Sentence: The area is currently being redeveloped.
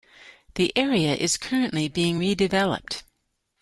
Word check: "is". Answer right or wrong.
right